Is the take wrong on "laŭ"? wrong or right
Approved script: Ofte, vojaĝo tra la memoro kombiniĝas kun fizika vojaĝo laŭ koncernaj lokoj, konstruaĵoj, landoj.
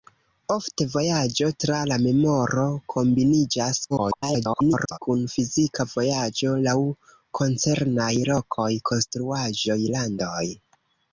right